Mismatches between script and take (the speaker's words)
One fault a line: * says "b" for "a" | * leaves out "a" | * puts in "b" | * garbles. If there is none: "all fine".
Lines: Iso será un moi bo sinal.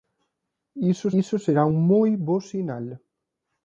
* puts in "iso"